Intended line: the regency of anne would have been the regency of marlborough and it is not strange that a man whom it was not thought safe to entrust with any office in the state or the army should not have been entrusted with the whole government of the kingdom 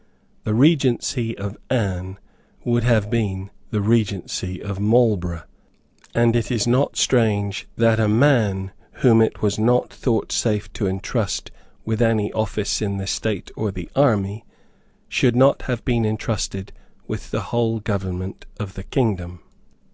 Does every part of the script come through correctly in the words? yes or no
yes